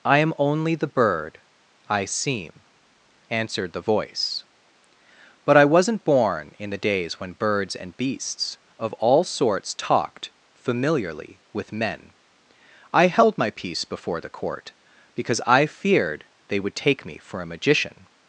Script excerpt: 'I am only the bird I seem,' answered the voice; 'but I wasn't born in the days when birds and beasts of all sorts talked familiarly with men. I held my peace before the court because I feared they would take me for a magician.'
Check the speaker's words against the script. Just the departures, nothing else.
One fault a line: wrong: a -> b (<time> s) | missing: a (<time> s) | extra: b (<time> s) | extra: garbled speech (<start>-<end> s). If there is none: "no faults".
no faults